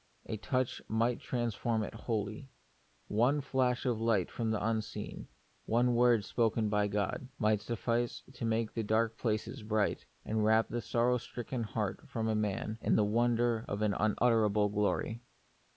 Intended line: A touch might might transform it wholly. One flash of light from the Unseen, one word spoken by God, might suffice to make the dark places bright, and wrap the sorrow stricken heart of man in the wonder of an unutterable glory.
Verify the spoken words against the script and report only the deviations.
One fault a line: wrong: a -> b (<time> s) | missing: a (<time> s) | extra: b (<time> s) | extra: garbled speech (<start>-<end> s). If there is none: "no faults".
missing: might (1.2 s)